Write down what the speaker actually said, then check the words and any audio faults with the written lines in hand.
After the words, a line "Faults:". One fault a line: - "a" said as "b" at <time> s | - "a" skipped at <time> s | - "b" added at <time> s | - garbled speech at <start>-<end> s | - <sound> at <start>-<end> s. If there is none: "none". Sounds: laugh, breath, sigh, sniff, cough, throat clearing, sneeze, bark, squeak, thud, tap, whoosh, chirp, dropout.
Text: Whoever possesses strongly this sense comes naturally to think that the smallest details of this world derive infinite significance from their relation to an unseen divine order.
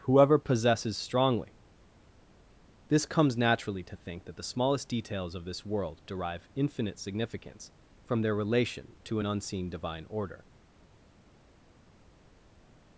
Whoever possesses strongly this comes naturally to think that the smallest details of this world derive infinite significance from their relation to an unseen divine order.
Faults:
- "sense" skipped at 3.0 s